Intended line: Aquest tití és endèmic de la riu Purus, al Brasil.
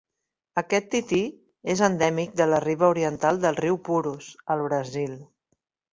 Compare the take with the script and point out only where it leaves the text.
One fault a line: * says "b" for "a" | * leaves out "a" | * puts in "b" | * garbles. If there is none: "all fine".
* puts in "riba oriental del"